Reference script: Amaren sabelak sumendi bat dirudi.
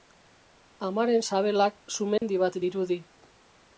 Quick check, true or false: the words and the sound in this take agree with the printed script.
false